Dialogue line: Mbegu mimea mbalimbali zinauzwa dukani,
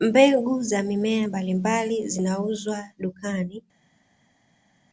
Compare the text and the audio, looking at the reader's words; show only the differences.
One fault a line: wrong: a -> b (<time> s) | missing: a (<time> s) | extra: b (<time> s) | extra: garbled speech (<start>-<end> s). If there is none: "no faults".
extra: za (0.6 s)